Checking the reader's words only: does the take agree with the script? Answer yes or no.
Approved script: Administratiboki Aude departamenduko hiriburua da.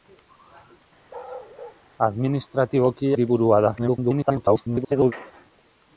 no